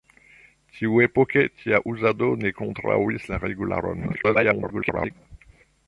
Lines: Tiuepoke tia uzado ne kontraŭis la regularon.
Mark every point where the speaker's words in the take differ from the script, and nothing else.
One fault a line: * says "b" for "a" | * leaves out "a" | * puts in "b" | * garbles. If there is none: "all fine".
* garbles